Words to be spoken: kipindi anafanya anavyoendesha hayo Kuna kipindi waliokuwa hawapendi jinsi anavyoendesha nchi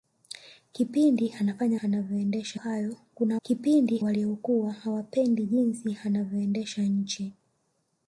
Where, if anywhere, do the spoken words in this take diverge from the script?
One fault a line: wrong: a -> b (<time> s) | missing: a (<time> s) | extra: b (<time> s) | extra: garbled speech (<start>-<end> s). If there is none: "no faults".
no faults